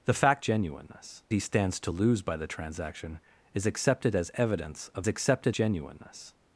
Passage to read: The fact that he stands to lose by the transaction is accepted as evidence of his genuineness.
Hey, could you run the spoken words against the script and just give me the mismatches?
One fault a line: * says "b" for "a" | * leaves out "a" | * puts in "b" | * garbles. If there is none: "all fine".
* says "genuineness" for "that"
* says "accepted" for "his"